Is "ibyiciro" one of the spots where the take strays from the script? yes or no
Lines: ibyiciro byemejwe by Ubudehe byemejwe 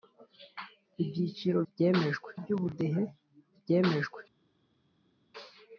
no